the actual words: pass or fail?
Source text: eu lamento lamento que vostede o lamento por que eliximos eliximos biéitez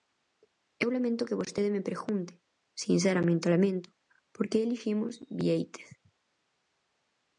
fail